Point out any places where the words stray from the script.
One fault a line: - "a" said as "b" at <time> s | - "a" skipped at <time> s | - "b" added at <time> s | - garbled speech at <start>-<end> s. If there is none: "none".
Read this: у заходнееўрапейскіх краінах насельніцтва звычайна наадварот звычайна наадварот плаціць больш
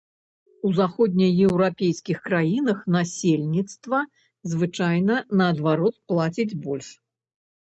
- "звычайна наадварот" skipped at 6.0 s